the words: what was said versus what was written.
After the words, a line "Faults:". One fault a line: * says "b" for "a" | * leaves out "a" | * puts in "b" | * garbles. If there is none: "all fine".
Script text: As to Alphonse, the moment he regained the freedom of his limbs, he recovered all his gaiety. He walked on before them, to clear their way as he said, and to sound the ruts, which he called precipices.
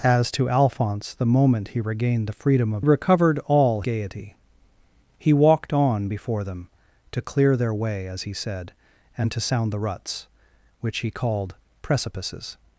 As to Alphonse, the moment he regained the freedom of recovered all gaiety. He walked on before them, to clear their way as he said, and to sound the ruts, which he called precipices.
Faults:
* leaves out "his limbs he"
* leaves out "his"